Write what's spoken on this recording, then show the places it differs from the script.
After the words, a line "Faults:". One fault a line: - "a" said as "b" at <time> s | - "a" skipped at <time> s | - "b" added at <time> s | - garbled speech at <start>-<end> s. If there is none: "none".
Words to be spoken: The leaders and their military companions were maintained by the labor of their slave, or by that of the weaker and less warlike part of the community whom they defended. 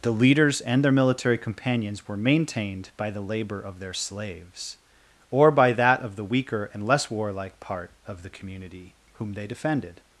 The leaders and their military companions were maintained by the labor of their slaves, or by that of the weaker and less warlike part of the community whom they defended.
Faults:
- "slave" said as "slaves" at 3.9 s